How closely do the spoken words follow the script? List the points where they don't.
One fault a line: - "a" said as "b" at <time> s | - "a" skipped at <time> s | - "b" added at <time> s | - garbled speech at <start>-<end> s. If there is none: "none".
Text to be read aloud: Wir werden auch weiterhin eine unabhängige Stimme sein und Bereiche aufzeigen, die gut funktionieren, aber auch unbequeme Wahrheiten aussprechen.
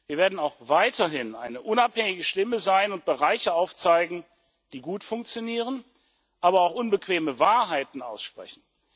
none